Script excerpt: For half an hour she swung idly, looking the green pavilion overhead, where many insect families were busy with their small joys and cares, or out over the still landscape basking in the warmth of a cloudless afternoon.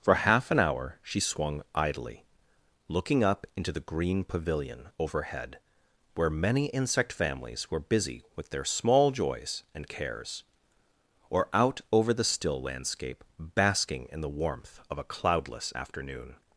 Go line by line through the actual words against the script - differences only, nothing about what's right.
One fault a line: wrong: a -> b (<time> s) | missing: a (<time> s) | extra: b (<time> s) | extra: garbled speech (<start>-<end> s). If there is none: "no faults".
extra: up into (3.2 s)